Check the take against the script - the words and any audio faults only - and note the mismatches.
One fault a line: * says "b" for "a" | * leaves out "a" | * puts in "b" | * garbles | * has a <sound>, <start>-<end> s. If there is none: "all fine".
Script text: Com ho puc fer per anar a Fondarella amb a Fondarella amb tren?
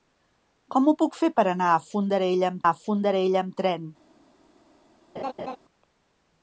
* has a laugh, 5.2-5.6 s